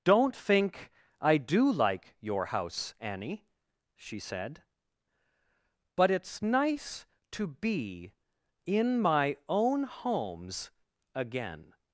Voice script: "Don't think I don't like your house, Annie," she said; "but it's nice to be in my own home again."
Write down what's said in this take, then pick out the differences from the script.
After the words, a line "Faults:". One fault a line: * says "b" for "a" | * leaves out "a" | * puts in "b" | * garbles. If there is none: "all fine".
"Don't think I do like your house, Annie," she said; "but it's nice to be in my own homes again."
Faults:
* says "do" for "don't"
* says "homes" for "home"